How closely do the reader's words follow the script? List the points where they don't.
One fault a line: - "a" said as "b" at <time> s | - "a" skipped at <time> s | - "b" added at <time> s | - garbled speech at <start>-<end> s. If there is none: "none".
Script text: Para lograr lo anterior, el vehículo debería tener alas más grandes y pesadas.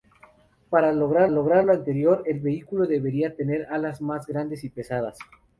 - "lograr" added at 1.3 s